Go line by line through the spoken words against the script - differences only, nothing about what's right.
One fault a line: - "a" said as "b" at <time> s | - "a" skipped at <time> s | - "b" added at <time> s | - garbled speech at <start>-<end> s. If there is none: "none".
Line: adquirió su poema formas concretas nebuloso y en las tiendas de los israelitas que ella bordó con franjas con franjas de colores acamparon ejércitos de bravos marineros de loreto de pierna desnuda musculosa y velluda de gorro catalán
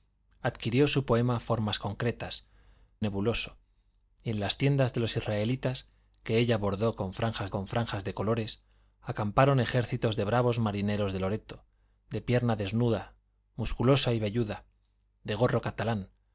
none